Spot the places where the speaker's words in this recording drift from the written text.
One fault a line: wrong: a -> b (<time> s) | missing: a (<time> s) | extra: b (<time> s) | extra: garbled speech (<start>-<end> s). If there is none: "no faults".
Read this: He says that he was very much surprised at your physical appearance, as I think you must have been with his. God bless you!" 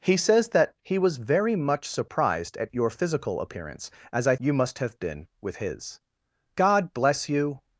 missing: think (4.3 s)